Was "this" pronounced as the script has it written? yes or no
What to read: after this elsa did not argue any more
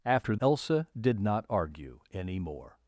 no